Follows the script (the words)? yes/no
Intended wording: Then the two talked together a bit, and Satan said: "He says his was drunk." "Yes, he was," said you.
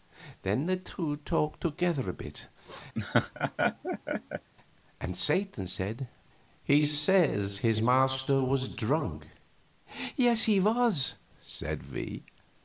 no